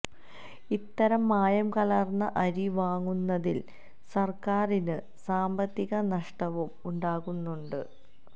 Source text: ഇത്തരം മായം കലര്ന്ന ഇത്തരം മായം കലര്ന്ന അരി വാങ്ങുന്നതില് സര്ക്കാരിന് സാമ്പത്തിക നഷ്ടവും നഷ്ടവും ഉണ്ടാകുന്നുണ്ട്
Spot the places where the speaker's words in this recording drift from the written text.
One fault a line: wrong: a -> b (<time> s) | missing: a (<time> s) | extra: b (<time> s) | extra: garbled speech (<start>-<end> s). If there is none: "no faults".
missing: ഇത്തരം മായം കലര്ന്ന (2.3 s)
missing: നഷ്ടവും (6.7 s)